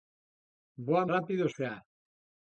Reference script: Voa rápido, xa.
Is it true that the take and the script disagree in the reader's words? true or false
false